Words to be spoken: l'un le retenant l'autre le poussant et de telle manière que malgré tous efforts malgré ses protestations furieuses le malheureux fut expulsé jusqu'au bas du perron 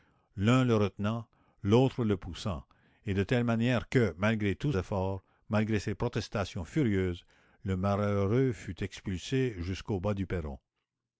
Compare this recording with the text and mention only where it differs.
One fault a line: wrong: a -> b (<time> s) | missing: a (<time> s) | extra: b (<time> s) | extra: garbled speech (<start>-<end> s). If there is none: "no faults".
no faults